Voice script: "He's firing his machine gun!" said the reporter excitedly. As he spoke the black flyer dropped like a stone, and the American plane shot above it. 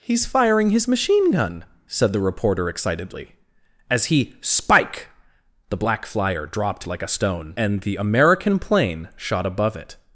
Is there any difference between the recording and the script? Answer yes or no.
yes